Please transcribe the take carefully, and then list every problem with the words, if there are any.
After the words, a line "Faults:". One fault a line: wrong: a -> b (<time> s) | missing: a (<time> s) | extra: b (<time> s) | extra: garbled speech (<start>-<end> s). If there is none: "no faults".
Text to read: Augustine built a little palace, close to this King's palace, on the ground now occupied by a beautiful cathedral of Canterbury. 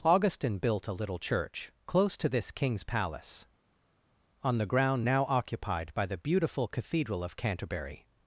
Augustine built a little church, close to this King's palace, on the ground now occupied by the beautiful cathedral of Canterbury.
Faults:
wrong: palace -> church (1.2 s)
wrong: a -> the (6.1 s)